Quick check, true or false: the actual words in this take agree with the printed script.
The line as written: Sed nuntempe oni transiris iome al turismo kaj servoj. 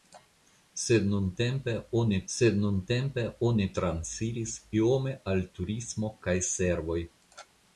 false